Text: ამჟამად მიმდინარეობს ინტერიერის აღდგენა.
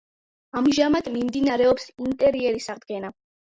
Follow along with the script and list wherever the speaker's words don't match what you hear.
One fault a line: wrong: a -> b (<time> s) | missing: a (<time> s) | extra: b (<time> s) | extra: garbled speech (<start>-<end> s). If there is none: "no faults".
no faults